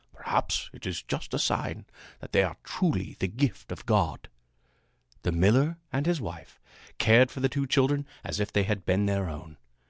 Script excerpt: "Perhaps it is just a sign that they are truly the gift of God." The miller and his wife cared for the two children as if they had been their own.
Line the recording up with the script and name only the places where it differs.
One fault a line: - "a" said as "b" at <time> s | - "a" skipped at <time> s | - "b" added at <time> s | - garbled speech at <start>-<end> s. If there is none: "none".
none